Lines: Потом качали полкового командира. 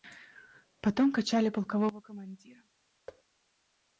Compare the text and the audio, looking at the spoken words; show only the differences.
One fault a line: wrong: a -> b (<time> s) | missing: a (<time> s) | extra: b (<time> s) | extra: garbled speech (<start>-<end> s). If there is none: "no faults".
no faults